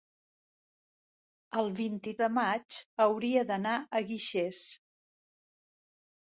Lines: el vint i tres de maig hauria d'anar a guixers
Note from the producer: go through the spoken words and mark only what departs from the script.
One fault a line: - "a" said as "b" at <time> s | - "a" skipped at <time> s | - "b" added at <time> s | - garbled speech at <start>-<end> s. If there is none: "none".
- "tres" skipped at 2.2 s